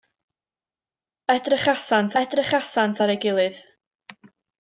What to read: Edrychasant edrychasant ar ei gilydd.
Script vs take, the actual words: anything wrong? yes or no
no